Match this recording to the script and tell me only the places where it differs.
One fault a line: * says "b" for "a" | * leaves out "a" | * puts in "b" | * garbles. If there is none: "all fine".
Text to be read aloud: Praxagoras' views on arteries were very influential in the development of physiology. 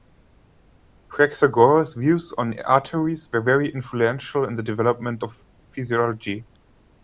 all fine